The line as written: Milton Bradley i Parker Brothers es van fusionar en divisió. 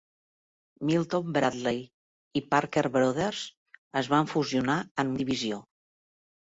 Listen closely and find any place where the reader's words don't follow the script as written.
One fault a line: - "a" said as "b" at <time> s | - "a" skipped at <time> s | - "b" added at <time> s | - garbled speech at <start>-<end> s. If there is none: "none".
none